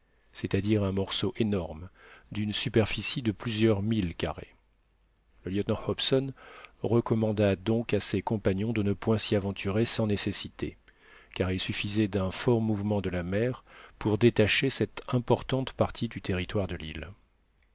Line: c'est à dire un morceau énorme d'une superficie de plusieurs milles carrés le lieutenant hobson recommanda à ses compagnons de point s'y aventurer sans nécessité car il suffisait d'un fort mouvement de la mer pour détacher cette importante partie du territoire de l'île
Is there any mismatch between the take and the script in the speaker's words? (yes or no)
yes